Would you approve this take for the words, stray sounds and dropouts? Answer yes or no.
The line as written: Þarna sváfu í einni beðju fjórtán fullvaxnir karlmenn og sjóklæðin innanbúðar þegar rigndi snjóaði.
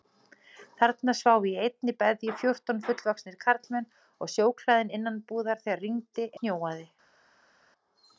yes